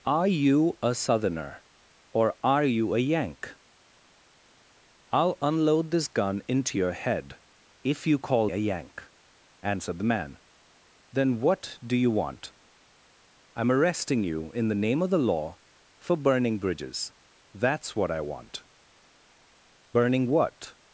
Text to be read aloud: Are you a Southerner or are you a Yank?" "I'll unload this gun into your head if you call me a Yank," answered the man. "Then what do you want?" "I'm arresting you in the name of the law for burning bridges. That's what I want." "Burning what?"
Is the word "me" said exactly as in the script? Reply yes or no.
no